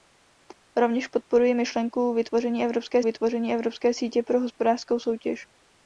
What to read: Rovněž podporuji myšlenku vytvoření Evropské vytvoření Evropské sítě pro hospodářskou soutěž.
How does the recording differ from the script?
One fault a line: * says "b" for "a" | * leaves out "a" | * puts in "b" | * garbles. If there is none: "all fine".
all fine